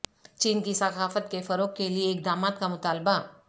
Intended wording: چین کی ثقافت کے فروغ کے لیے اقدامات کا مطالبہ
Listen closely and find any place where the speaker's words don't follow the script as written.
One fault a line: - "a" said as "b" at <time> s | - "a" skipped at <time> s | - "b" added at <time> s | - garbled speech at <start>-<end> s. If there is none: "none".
none